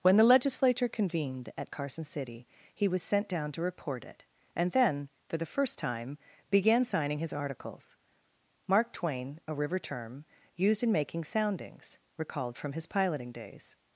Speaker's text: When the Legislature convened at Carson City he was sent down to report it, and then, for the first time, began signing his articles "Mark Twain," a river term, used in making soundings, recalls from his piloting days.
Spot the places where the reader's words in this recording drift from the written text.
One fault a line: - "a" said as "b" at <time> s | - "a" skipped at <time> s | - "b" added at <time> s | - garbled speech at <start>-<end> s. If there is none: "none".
- "recalls" said as "recalled" at 12.2 s